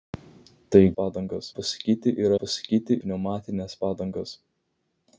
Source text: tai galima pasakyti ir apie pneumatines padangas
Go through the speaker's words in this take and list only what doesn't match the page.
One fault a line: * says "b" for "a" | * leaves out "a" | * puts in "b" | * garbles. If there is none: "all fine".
* says "padangas" for "galima"
* says "pasakyti" for "apie"